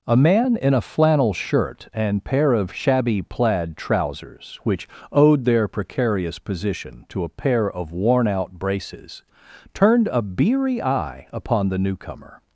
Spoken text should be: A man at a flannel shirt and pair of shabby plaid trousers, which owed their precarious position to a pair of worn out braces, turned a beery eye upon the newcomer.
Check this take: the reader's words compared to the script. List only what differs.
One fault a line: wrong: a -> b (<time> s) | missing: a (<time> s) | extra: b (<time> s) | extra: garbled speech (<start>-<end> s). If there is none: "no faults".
wrong: at -> in (0.6 s)